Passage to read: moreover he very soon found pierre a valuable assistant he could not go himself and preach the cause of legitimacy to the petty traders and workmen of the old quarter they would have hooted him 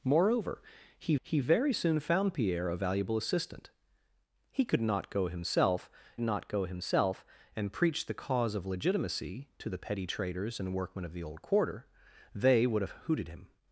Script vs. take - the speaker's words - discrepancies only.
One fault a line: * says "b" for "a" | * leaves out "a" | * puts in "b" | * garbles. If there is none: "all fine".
* puts in "he"
* puts in "not go himself"